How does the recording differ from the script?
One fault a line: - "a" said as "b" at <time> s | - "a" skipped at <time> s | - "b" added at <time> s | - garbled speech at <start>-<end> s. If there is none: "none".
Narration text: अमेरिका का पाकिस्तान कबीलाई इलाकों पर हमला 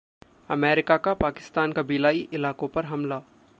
none